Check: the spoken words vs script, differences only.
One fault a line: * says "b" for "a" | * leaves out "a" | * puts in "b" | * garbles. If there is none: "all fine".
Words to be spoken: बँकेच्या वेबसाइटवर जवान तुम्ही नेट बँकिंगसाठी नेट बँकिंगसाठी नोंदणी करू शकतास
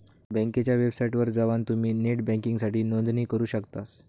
* leaves out "नेट बँकिंगसाठी"